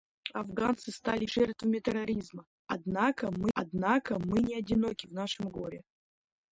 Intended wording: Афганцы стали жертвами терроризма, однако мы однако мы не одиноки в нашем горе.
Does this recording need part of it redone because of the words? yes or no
no